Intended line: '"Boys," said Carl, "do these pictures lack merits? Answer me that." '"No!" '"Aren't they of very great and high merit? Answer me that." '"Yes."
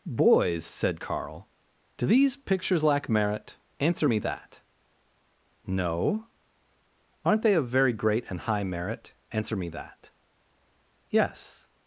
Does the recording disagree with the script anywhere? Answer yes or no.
yes